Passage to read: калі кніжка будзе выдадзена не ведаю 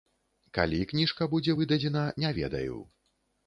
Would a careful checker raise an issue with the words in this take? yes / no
no